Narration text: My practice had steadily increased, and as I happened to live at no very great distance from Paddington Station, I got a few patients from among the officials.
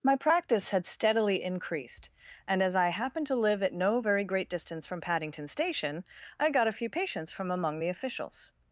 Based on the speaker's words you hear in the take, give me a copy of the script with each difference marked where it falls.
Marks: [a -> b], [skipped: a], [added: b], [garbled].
My practice had steadily increased, and as I happened to live at no very great distance from Paddington Station, I got a few patients from among the officials.